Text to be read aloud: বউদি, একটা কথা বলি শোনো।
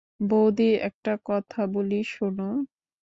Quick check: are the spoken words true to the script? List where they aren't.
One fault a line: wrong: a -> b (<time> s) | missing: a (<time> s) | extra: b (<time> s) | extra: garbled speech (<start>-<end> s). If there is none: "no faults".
no faults